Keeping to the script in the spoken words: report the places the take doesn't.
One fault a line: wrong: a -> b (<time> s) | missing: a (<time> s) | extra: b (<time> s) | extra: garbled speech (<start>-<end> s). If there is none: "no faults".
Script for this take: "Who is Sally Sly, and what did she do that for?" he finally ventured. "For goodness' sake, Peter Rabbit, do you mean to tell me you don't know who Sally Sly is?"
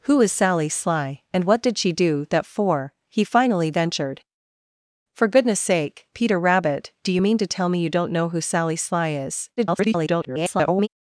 extra: garbled speech (9.6-10.9 s)